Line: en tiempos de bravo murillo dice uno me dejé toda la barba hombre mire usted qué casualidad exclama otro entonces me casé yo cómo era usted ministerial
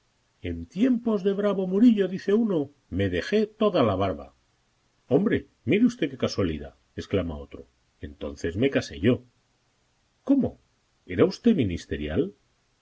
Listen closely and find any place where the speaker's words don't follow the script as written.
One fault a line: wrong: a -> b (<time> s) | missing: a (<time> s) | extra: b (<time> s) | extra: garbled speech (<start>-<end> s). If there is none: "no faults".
no faults